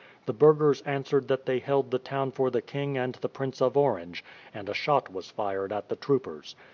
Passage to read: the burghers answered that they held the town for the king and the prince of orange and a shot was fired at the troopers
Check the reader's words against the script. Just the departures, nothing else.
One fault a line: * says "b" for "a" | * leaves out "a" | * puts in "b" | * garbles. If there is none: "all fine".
all fine